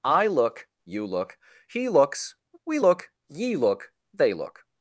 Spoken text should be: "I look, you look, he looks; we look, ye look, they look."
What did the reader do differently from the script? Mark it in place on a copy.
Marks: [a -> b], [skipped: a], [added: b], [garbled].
"I look, you look, he looks; we look, ye look, they look."